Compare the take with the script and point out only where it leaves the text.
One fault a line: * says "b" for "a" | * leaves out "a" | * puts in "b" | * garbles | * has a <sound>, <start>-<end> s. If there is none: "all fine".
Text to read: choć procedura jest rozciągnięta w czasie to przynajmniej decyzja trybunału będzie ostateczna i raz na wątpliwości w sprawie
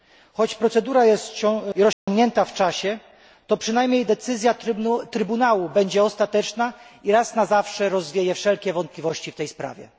* has a dropout, 1.9-2.1 s
* puts in "zawsze rozwieje wszelkie"
* puts in "tej"